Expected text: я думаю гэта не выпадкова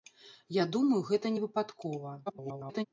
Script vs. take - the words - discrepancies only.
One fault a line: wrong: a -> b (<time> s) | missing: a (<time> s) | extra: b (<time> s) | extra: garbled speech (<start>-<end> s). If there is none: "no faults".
extra: garbled speech (2.3-2.9 s)